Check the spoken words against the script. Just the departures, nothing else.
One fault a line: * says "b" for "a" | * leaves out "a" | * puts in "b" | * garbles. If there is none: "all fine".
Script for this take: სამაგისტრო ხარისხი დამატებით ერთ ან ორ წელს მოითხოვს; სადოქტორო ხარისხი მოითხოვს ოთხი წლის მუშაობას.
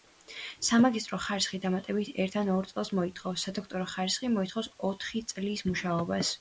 all fine